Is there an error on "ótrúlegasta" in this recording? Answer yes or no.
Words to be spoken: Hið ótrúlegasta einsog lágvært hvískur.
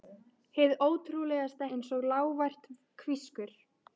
no